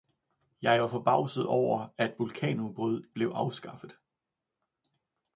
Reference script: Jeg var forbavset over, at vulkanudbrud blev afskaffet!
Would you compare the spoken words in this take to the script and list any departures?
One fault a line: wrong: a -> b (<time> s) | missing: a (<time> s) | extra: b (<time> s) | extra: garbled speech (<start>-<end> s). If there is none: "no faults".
no faults